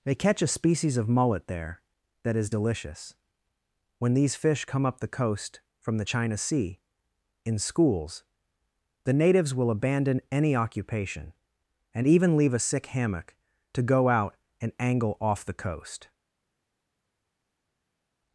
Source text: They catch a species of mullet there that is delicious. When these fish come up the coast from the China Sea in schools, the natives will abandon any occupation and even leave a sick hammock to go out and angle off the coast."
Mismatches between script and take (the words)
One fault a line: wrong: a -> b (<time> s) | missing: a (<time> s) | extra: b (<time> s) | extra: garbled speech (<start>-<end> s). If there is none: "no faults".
no faults